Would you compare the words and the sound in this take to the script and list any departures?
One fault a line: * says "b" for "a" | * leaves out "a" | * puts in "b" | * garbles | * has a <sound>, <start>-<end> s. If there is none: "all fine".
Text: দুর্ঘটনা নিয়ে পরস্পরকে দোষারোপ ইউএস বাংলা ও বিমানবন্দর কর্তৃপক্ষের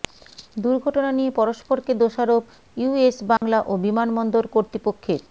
* has a dropout, 3.4-3.4 s